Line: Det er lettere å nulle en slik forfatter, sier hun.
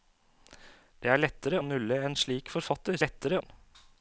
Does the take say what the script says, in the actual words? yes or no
no